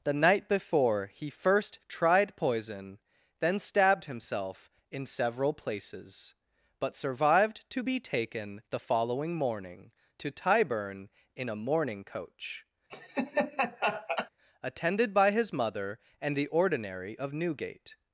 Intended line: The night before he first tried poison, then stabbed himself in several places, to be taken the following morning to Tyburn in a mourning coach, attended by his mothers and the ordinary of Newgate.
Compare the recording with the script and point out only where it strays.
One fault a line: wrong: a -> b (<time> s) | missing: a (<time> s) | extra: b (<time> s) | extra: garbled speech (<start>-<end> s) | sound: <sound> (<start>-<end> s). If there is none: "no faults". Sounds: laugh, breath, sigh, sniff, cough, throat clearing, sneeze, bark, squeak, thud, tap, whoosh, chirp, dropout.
extra: but survived (6.8 s)
sound: laugh (12.9-14.3 s)
wrong: mothers -> mother (15.5 s)